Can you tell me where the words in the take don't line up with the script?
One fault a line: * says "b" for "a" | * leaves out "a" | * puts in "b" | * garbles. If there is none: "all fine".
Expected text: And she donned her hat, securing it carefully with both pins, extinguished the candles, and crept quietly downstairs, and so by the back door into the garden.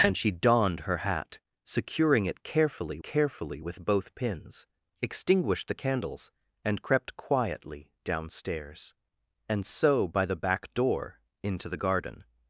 * puts in "carefully"